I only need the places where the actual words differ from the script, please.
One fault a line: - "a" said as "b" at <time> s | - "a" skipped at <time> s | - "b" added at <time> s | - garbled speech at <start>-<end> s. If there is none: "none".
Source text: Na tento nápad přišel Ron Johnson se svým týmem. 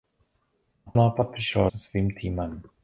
- "tento" skipped at 0.9 s
- "Ron Johnson" skipped at 1.7 s